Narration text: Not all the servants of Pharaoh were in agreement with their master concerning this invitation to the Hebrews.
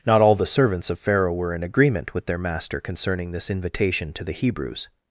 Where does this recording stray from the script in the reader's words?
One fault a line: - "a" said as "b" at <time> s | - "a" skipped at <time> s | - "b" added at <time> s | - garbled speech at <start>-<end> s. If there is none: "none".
none